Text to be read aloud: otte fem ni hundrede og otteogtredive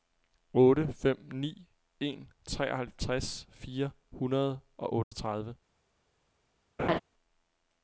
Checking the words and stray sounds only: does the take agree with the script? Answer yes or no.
no